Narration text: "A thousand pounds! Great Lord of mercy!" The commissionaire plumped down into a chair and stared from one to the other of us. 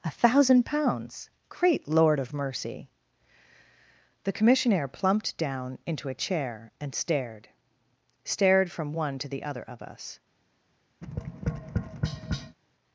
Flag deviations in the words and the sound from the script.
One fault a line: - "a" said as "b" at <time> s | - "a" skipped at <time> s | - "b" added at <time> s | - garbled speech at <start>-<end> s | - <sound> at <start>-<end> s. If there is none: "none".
- "stared" added at 8.2 s
- tap at 11.0-12.6 s